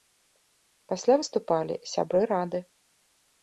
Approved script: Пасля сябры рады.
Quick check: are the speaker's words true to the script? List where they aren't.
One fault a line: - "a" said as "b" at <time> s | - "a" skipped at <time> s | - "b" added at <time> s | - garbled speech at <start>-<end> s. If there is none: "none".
- "выступалі" added at 1.2 s